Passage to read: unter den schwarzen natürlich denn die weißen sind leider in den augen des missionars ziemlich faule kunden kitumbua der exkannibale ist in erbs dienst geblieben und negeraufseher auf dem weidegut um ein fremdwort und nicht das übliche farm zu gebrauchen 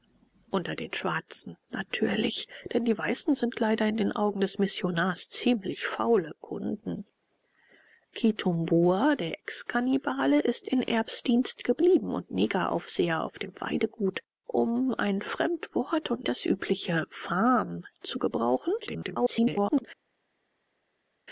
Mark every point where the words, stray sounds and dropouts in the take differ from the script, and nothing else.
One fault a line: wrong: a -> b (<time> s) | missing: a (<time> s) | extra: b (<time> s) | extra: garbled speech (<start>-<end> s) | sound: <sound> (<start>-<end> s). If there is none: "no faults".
missing: nicht (16.2 s)
extra: garbled speech (18.8-19.9 s)